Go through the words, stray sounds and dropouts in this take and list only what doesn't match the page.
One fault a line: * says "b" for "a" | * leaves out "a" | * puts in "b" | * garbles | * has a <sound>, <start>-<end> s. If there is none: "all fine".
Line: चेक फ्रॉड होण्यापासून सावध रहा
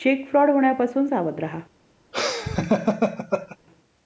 * has a laugh, 2.1-3.6 s